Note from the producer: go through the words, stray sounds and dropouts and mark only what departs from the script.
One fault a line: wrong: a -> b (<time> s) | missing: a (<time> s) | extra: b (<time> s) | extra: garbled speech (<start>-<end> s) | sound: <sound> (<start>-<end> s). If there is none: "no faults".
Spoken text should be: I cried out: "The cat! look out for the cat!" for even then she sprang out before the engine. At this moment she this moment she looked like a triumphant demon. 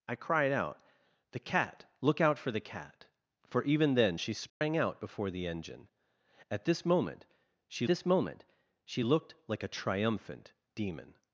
sound: dropout (4.5-4.6 s)